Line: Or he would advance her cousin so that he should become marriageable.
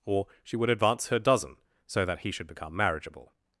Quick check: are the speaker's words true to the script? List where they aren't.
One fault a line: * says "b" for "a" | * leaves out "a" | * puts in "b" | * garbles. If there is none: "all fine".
* says "she" for "he"
* says "dozen" for "cousin"